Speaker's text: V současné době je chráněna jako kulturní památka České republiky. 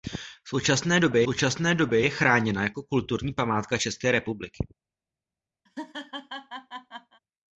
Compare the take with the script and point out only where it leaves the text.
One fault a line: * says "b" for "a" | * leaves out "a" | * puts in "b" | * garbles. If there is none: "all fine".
* puts in "současné době"